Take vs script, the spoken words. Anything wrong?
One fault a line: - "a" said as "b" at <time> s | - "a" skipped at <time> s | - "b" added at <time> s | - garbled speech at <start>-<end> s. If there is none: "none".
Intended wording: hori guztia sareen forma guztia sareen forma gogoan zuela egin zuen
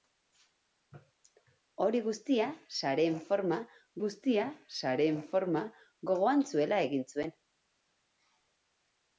none